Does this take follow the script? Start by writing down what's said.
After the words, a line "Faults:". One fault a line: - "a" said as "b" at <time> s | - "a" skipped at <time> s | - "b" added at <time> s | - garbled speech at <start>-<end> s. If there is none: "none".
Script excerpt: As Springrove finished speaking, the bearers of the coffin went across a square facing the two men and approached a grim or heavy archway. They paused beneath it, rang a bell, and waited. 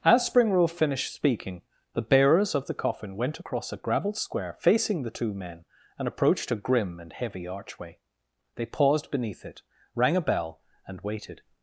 As Springrove finished speaking, the bearers of the coffin went across a gravelled square facing the two men and approached a grim and heavy archway. They paused beneath it, rang a bell, and waited.
Faults:
- "gravelled" added at 3.8 s
- "or" said as "and" at 7.0 s